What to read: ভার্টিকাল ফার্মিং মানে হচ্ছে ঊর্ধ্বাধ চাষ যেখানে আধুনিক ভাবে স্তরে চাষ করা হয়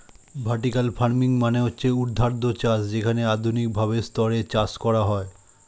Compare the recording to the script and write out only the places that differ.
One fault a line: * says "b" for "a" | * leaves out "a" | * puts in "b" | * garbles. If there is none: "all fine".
all fine